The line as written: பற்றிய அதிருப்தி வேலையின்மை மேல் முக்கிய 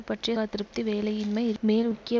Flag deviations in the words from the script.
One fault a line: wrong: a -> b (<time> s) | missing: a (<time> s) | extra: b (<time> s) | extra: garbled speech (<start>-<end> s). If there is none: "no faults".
no faults